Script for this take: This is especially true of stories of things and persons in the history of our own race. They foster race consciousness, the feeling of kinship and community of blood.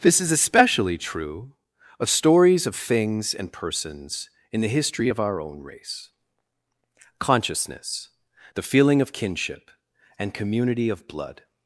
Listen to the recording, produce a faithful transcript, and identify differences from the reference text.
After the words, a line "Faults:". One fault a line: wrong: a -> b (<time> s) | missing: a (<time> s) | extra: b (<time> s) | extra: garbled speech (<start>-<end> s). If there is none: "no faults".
This is especially true of stories of things and persons in the history of our own race. consciousness, the feeling of kinship and community of blood.
Faults:
missing: They foster race (6.1 s)